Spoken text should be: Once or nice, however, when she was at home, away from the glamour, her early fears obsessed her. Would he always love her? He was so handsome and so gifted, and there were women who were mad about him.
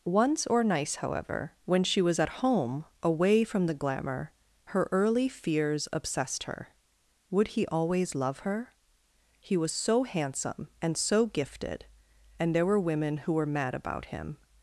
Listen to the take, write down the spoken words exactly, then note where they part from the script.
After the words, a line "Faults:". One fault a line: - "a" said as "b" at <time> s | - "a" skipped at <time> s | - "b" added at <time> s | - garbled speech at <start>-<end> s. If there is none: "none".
Once or nice, however, when she was at home, away from the glamour, her early fears obsessed her. Would he always love her? He was so handsome and so gifted, and there were women who were mad about him.
Faults:
none